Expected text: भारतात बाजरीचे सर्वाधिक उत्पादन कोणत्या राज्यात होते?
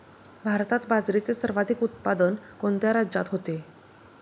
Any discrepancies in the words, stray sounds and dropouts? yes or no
no